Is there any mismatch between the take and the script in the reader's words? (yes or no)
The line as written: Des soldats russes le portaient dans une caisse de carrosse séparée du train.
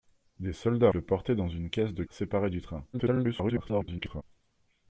yes